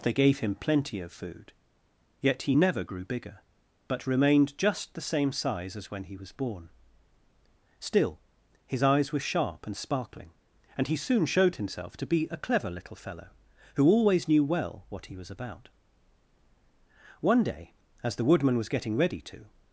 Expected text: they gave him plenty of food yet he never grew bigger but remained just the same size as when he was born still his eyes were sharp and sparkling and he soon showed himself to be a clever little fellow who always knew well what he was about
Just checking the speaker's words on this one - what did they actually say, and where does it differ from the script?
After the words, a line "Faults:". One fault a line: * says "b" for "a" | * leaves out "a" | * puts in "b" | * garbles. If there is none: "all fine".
they gave him plenty of food yet he never grew bigger but remained just the same size as when he was born still his eyes were sharp and sparkling and he soon showed himself to be a clever little fellow who always knew well what he was about one day as the woodman was getting ready to
Faults:
* puts in "one day as the woodman was getting ready to"